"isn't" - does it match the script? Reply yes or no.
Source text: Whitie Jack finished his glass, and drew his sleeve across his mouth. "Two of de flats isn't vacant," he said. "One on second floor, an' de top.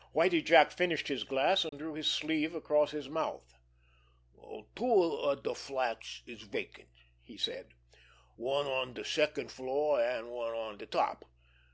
no